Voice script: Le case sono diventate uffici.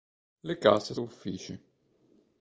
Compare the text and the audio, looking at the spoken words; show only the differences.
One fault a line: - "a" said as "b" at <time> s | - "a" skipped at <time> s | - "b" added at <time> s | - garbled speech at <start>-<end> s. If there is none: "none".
- "sono diventate" skipped at 0.9 s